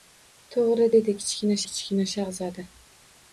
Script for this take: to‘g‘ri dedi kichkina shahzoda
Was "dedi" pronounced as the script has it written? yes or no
yes